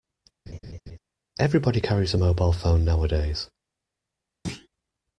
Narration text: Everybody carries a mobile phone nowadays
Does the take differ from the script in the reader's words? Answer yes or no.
no